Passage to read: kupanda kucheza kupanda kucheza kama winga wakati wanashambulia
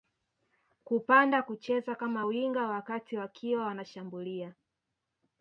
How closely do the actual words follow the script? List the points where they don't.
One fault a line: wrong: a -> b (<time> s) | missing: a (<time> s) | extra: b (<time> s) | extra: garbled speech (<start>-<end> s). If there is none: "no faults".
missing: kupanda kucheza (1.9 s)
extra: wakiwa (3.2 s)